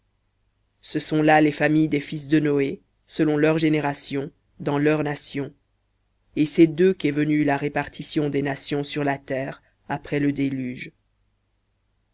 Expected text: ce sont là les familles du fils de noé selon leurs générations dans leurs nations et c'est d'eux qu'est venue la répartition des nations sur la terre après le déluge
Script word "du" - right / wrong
wrong